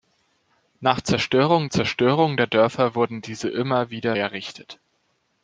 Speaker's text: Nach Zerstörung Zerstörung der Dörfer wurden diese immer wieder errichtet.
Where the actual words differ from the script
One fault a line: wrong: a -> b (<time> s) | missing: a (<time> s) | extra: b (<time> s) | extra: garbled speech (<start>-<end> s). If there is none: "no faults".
no faults